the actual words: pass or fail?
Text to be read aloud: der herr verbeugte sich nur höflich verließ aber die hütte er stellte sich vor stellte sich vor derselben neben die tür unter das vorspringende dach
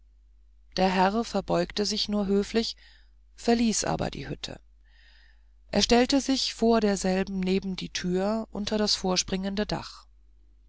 fail